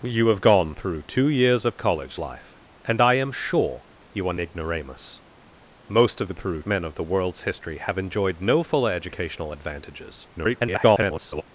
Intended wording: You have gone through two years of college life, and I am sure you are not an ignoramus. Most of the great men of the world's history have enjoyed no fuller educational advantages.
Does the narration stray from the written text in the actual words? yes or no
yes